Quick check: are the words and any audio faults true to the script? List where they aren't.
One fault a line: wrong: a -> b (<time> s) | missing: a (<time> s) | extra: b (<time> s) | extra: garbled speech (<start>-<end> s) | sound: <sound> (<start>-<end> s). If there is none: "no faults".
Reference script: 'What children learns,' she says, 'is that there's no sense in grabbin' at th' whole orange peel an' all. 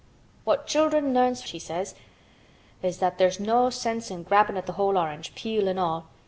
no faults